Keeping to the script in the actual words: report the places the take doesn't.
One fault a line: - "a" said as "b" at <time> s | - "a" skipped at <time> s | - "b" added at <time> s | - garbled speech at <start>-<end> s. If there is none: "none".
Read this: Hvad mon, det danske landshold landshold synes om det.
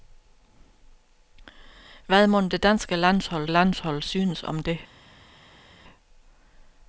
none